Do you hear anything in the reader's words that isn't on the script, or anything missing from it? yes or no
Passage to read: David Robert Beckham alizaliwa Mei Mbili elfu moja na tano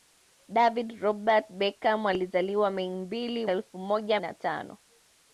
no